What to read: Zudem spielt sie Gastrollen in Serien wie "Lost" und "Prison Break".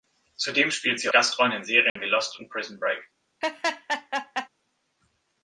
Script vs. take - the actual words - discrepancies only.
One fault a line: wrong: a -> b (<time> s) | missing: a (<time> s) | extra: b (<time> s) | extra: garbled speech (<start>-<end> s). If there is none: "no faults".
no faults